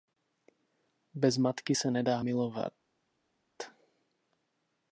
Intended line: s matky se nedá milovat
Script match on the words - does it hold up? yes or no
no